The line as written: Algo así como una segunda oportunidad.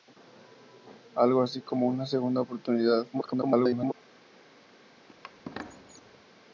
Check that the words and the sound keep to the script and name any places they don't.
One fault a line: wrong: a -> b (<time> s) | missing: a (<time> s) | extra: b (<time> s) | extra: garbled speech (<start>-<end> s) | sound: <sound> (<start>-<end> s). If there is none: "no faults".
extra: garbled speech (3.1-3.9 s)
sound: squeak (5.1-6.2 s)